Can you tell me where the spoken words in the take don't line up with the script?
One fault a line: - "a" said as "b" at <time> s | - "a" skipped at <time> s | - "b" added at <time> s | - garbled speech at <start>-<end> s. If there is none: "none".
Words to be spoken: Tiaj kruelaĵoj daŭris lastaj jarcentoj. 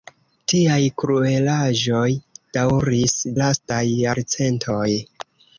none